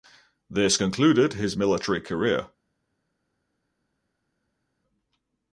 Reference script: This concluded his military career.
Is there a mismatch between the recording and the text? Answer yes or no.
no